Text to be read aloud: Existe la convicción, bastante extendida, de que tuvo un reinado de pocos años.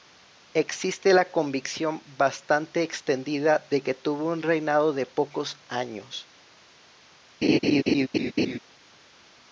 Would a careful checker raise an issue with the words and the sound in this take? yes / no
yes